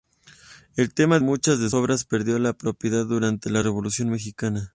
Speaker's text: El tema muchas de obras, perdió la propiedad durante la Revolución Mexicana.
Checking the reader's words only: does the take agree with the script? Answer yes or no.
yes